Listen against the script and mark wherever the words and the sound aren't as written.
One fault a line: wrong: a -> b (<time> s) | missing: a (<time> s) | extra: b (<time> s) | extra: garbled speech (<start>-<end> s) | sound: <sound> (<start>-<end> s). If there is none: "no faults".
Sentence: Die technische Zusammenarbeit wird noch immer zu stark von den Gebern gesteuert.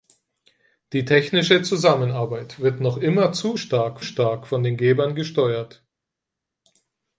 extra: stark (4.0 s)